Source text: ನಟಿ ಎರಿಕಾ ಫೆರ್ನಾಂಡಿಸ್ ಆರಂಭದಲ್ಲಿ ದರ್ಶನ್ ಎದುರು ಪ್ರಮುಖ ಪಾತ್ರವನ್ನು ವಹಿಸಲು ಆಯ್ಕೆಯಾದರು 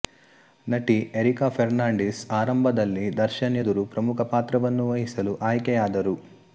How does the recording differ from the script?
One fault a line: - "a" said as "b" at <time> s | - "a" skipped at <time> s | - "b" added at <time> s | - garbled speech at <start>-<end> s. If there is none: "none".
none